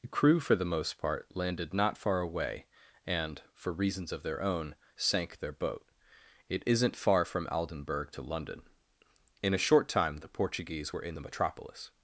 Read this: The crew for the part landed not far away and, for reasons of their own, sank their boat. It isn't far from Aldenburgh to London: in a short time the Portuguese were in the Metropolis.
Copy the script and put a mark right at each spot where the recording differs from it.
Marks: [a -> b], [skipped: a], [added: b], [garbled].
The crew for the [added: most] part landed not far away and, for reasons of their own, sank their boat. It isn't far from Aldenburgh to London: in a short time the Portuguese were in the Metropolis.